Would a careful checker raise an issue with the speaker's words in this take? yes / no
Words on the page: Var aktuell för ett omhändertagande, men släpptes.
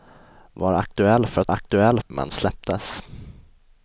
yes